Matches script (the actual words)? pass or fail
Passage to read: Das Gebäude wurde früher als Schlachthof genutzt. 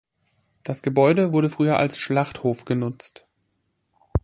pass